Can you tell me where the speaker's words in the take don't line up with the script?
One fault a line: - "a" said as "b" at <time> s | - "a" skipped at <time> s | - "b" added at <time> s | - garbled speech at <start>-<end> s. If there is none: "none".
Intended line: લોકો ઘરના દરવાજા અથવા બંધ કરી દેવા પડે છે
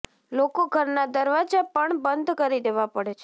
- "અથવા" said as "પણ" at 1.7 s